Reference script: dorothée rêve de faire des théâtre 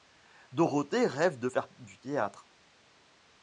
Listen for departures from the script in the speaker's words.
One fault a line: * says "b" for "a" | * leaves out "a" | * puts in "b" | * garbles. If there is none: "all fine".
* says "du" for "des"